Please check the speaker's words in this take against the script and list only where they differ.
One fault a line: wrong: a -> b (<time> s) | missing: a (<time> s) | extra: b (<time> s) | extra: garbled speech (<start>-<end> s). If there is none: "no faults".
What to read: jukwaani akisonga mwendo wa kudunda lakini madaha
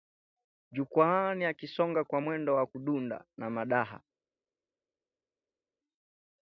extra: kwa (2.0 s)
wrong: lakini -> na (3.4 s)